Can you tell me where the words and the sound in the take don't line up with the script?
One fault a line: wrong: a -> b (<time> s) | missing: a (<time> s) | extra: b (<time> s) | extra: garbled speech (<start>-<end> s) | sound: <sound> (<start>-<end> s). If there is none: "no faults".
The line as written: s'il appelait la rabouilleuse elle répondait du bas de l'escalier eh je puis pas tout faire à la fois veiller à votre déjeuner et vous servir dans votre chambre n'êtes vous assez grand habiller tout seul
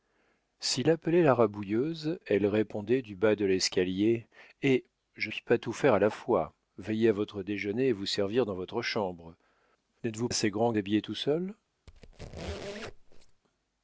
sound: squeak (11.9-13.4 s)